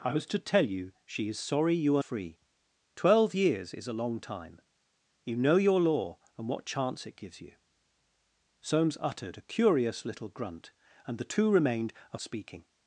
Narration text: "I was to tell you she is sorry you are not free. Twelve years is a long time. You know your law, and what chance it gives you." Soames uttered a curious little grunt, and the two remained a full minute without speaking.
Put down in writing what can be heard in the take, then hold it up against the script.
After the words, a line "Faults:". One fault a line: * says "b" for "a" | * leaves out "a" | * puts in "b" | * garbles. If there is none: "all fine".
"I was to tell you she is sorry you are free. Twelve years is a long time. You know your law, and what chance it gives you." Soames uttered a curious little grunt, and the two remained a speaking.
Faults:
* leaves out "not"
* leaves out "full minute without"